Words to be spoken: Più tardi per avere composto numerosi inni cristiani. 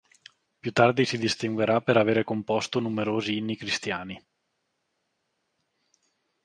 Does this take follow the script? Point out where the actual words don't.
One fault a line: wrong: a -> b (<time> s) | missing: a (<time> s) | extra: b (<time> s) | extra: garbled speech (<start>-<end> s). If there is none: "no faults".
extra: si distinguerà (1.0 s)